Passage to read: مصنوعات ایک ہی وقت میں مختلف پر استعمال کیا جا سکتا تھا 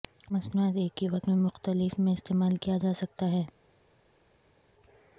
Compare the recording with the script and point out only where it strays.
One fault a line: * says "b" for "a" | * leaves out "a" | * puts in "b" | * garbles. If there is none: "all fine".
* says "میں" for "پر"
* says "ہے" for "تھا"